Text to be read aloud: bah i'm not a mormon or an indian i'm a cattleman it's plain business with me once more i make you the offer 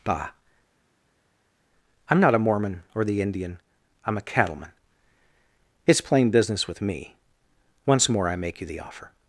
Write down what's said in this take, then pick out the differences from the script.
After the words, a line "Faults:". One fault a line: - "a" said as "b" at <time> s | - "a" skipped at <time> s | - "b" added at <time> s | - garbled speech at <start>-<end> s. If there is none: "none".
bah i'm not a mormon or the indian i'm a cattleman it's plain business with me once more i make you the offer
Faults:
- "an" said as "the" at 3.0 s